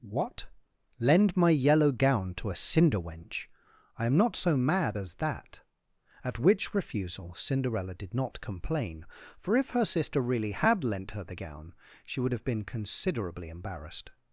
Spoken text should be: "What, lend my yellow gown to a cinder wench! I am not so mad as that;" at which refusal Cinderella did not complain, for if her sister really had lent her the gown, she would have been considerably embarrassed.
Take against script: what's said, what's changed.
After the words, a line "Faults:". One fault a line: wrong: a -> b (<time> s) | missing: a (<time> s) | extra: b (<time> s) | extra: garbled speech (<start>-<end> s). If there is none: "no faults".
"What, lend my yellow gown to a cinder wench! I am not so mad as that;" at which refusal Cinderella did not complain, for if her sister really had lent her the gown, she would have been considerably embarrassed.
Faults:
no faults